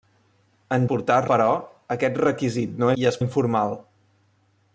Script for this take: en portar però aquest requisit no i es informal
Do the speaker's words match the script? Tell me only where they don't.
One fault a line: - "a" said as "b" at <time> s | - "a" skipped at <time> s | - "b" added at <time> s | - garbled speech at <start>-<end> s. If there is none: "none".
none